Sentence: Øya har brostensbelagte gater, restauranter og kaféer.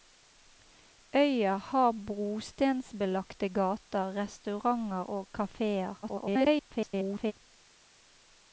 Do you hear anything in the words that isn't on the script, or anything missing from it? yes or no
yes